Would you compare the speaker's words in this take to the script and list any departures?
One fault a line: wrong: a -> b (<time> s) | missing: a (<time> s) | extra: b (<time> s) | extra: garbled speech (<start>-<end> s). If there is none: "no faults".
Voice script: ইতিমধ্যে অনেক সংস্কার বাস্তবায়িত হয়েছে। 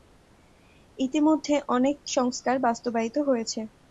no faults